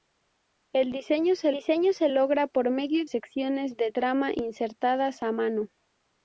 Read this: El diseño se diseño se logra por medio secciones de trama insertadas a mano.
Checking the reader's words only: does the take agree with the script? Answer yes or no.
yes